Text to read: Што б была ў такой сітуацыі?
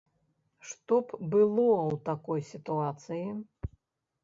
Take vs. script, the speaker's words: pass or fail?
fail